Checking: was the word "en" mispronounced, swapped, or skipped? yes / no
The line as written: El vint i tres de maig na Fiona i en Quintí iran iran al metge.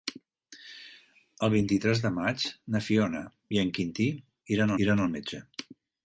no